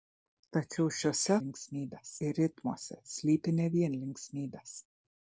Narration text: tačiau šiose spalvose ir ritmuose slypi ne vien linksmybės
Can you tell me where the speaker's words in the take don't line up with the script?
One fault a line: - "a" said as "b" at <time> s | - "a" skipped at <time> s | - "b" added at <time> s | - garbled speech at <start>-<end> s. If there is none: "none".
- "spalvose" said as "linksmybės" at 1.4 s